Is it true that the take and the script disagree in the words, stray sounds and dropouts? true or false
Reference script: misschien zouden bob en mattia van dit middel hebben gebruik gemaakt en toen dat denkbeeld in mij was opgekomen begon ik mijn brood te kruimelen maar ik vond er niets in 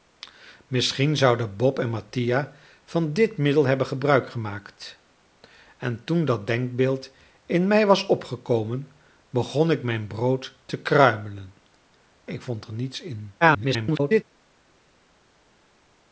true